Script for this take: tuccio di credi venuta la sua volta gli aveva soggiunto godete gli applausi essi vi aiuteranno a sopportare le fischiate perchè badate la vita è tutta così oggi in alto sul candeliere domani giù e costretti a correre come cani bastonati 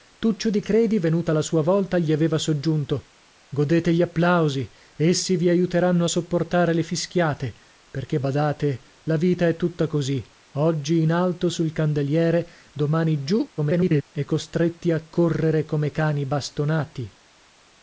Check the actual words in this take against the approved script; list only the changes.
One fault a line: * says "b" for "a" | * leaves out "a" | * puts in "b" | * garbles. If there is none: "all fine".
* garbles